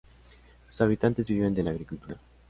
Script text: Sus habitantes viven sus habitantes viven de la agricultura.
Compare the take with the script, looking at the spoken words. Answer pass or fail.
fail